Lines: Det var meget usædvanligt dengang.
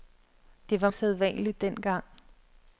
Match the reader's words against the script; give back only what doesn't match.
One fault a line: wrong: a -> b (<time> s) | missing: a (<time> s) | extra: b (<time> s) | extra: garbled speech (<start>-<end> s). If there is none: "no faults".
missing: meget (0.9 s)